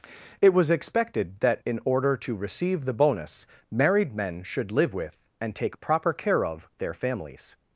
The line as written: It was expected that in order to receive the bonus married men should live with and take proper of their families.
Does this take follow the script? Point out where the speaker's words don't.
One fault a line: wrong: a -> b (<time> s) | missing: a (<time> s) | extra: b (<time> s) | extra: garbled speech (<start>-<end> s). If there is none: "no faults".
extra: care (6.1 s)